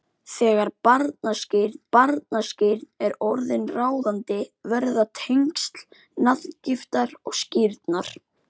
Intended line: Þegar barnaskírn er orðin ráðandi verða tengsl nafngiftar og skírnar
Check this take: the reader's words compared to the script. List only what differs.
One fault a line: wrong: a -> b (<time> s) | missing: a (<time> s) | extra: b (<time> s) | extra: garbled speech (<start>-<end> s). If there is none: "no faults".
extra: barnaskírn (2.0 s)